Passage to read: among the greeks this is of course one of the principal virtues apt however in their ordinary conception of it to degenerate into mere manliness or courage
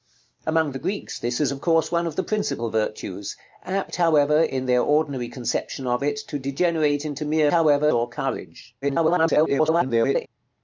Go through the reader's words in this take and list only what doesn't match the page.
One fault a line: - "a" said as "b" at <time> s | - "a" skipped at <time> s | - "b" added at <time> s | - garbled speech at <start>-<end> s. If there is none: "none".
- "manliness" said as "however" at 7.5 s
- garbled speech at 8.8-10.3 s